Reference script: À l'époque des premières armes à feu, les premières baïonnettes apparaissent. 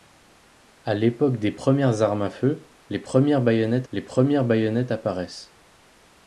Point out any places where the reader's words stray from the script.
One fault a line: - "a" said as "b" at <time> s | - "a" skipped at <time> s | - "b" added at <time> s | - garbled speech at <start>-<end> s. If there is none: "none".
- "les premières baïonnettes" added at 3.9 s